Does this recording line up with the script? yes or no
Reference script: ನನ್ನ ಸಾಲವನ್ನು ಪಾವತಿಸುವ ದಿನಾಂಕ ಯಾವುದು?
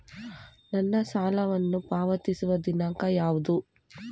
yes